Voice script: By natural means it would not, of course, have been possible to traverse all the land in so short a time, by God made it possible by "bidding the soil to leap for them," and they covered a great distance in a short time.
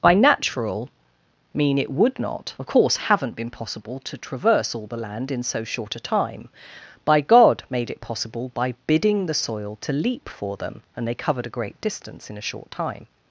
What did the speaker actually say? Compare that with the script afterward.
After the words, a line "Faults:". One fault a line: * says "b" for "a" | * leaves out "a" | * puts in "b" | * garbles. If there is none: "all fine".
By natural mean it would not, of course, haven't been possible to traverse all the land in so short a time, by God made it possible by "bidding the soil to leap for them," and they covered a great distance in a short time.
Faults:
* says "mean" for "means"
* says "haven't" for "have"